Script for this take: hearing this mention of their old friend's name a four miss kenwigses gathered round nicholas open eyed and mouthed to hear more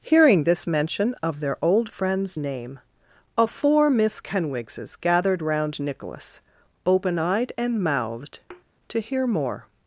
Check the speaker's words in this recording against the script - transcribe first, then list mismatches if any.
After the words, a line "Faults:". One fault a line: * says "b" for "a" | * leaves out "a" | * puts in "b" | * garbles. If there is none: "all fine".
hearing this mention of their old friend's name a four miss kenwigses gathered round nicholas open eyed and mouthed to hear more
Faults:
all fine